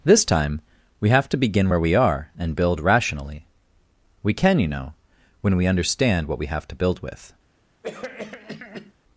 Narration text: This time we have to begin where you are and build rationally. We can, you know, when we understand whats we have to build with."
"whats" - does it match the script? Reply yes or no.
no